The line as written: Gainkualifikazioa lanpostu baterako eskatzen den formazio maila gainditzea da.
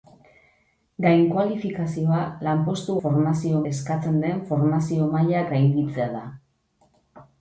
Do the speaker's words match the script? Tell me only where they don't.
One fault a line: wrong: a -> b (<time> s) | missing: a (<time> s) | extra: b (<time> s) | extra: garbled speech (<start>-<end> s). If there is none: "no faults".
wrong: baterako -> formazio (3.1 s)